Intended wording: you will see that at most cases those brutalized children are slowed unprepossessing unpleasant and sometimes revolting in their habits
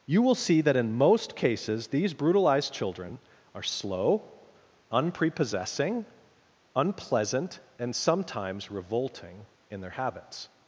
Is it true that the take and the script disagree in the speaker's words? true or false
true